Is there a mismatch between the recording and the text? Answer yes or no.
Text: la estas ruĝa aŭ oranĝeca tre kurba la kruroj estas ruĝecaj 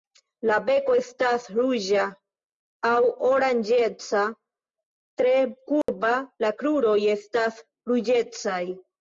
yes